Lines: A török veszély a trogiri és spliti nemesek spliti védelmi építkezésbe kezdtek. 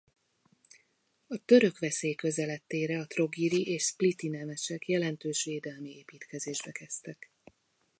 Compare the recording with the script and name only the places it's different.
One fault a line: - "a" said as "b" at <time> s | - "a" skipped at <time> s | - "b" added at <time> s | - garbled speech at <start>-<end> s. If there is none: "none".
- "közeledtére" added at 2.1 s
- "spliti" said as "jelentős" at 4.9 s